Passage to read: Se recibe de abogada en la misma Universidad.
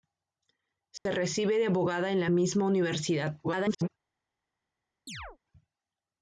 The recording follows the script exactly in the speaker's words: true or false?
false